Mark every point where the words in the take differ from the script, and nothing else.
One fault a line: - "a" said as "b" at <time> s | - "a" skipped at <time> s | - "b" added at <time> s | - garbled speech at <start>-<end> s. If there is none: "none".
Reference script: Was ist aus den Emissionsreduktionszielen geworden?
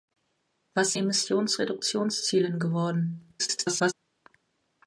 - "ist aus den" skipped at 0.9 s
- garbled speech at 3.4-3.9 s